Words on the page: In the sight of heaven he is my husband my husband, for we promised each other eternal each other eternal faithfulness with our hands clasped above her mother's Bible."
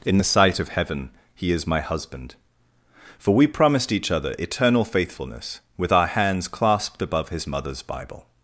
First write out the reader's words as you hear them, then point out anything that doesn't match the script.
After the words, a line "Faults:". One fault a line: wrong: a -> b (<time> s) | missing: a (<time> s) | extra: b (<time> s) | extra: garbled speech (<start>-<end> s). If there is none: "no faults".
In the sight of heaven he is my husband, for we promised each other eternal faithfulness with our hands clasped above his mother's Bible."
Faults:
missing: my husband (2.3 s)
missing: each other eternal (4.9 s)
wrong: her -> his (7.3 s)